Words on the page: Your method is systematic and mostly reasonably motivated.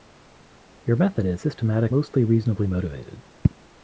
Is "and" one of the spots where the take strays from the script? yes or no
yes